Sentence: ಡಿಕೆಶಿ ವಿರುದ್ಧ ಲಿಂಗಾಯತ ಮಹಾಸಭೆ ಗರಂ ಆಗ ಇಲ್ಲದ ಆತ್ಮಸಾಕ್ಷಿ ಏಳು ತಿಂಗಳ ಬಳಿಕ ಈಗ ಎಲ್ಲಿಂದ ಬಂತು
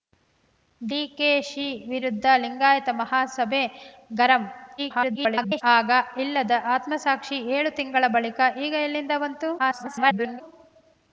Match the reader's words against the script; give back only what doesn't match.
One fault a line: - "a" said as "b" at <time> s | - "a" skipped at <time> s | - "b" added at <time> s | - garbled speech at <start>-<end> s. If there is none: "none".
- garbled speech at 4.8-5.6 s
- garbled speech at 9.6-10.4 s